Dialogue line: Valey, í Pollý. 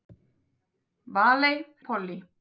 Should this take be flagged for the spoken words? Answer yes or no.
no